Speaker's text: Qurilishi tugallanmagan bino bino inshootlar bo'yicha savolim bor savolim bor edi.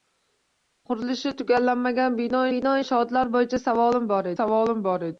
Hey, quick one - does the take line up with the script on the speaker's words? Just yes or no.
yes